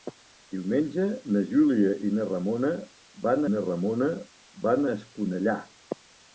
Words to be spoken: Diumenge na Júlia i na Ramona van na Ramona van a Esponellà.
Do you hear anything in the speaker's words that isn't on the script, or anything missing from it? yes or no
no